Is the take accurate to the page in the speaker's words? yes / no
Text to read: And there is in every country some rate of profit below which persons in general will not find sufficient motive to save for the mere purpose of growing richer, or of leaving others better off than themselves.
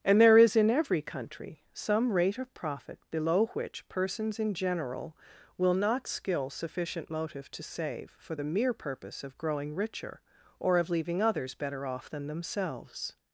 no